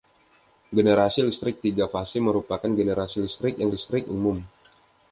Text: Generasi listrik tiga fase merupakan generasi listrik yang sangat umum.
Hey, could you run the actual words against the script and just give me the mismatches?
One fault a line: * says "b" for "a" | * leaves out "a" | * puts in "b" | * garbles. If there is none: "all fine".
* says "listrik" for "sangat"